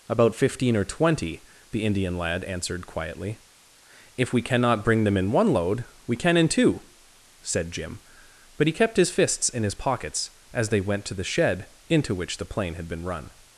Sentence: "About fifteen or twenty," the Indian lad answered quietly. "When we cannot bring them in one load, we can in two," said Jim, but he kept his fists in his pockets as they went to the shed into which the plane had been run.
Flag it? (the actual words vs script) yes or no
yes